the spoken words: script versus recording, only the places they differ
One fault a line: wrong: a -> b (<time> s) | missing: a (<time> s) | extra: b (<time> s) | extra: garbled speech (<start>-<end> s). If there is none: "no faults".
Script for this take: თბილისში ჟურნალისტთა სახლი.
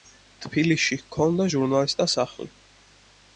extra: ჰქონდა (1.0 s)